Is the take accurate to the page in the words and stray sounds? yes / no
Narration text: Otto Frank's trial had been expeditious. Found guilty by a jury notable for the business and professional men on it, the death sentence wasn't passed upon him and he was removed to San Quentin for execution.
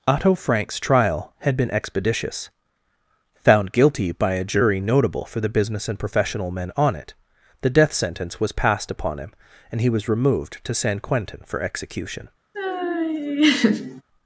no